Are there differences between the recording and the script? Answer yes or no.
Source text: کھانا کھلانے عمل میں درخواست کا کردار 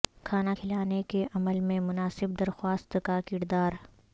yes